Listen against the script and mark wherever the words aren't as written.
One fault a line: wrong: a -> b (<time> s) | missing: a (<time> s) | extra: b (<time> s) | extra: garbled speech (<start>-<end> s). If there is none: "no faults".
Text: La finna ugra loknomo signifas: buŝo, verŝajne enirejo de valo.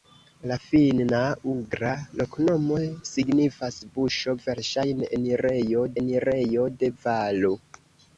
extra: enirejo (6.0 s)